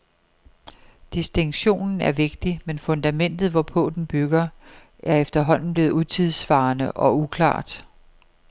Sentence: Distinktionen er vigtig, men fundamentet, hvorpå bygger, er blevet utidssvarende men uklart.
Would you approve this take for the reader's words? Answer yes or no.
no